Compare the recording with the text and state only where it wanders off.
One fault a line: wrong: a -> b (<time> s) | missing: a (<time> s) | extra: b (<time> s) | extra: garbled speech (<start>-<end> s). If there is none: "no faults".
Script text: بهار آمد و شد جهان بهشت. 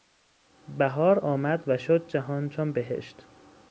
extra: چون (2.5 s)